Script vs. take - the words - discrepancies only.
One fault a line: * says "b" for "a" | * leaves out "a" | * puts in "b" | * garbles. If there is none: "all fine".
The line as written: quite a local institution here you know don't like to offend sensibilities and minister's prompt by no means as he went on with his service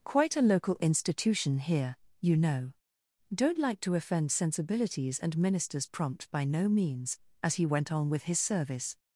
all fine